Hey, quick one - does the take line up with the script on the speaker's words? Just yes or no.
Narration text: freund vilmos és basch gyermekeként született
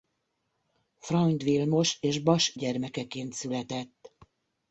yes